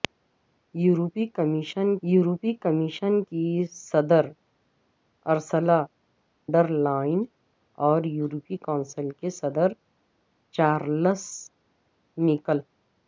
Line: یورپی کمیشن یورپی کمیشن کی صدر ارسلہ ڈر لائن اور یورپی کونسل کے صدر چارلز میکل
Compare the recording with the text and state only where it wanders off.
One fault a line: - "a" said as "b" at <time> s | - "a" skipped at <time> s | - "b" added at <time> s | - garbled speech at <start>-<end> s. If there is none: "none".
none